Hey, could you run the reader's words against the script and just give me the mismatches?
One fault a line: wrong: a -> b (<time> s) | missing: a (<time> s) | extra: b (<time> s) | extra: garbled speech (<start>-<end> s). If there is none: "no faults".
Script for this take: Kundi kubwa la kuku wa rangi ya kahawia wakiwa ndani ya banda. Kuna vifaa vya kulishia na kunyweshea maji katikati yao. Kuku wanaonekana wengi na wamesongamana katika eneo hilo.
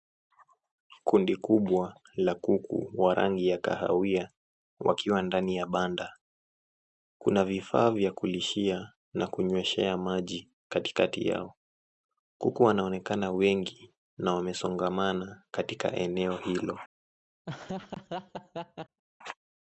no faults